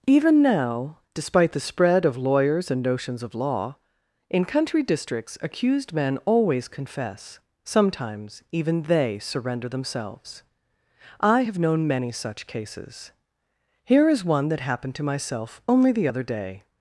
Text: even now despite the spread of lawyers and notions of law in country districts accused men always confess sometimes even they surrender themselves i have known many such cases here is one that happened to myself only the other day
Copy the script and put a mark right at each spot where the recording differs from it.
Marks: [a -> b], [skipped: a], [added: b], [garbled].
even now despite the spread of lawyers and notions of law in country districts accused men always confess sometimes even they surrender themselves i have known many such cases here is one that happened to myself only the other day